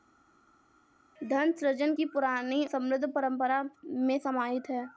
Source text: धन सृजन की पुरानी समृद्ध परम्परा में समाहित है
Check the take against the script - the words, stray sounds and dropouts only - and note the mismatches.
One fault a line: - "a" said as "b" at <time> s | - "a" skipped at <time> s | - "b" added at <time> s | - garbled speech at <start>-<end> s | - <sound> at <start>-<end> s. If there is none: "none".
none